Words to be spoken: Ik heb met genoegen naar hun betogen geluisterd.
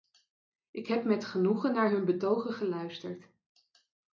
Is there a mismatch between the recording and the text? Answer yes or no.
no